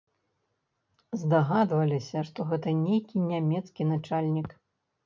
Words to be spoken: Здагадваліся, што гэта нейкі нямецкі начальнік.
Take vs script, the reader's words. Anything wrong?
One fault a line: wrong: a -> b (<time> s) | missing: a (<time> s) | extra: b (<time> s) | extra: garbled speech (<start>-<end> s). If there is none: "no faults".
no faults